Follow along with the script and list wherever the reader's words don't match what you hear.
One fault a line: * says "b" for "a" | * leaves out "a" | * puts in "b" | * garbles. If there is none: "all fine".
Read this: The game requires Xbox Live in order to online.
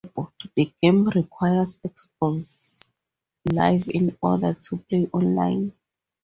* puts in "play"